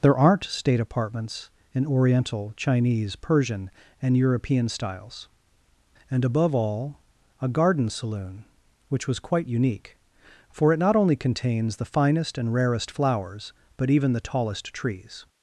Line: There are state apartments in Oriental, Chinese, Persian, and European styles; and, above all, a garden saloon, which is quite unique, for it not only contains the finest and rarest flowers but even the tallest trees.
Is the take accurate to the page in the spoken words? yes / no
no